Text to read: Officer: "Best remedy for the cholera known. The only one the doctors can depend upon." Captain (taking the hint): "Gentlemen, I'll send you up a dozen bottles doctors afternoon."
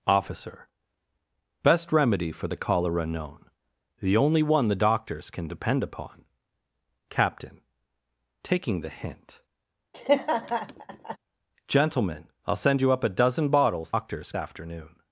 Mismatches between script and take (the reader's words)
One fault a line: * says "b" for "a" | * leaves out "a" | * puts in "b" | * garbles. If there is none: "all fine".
all fine